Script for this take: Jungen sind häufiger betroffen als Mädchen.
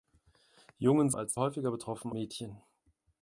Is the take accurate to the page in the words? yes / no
no